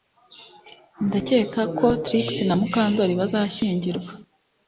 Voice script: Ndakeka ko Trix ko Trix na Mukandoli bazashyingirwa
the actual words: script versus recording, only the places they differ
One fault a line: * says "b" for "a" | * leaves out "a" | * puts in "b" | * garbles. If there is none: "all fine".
* leaves out "ko Trix"